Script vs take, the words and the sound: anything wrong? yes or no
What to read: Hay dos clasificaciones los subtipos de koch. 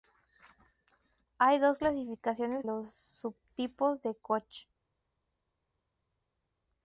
no